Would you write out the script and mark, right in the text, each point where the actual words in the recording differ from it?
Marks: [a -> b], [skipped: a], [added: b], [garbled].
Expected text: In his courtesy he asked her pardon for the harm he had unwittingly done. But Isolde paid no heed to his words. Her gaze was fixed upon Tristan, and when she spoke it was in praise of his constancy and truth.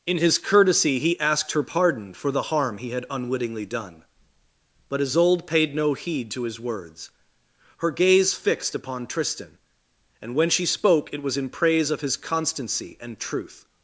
In his courtesy he asked her pardon for the harm he had unwittingly done. But Isolde paid no heed to his words. Her gaze [skipped: was] fixed upon Tristan, and when she spoke it was in praise of his constancy and truth.